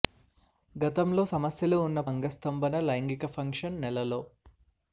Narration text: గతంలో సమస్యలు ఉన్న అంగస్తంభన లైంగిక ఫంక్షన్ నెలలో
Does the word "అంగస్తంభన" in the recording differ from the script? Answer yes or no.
no